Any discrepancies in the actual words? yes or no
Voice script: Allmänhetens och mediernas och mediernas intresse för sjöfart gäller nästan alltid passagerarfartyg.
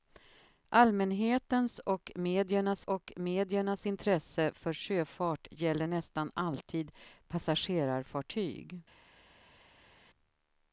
no